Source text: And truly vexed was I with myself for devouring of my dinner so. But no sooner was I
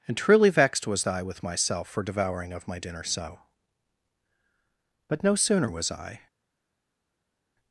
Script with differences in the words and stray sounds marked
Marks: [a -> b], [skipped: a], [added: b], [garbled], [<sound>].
And truly vexed was I with myself for devouring of my dinner so. But no sooner was I